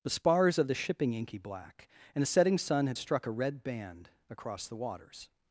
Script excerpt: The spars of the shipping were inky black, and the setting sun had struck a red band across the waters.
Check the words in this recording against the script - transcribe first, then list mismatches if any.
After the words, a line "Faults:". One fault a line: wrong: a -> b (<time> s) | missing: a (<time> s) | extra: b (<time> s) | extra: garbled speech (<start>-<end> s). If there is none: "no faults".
The spars of the shipping inky black, and the setting sun had struck a red band across the waters.
Faults:
missing: were (1.1 s)